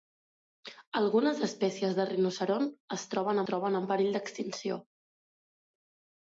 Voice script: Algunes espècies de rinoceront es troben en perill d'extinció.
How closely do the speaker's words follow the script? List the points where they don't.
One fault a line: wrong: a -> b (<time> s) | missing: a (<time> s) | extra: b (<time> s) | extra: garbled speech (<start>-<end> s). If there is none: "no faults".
extra: troben (3.5 s)